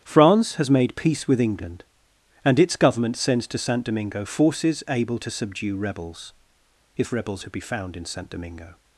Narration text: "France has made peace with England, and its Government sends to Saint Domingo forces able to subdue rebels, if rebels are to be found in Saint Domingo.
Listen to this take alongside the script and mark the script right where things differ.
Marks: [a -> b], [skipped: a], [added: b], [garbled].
"France has made peace with England, and its Government sends to Saint Domingo forces able to subdue rebels, if rebels [skipped: are] to be found in Saint Domingo.